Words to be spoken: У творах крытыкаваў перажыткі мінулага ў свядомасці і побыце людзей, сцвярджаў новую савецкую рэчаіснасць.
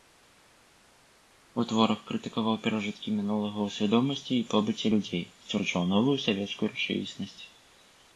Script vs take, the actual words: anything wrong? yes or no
no